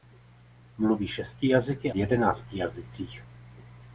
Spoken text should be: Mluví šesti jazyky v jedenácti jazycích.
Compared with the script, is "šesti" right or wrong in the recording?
right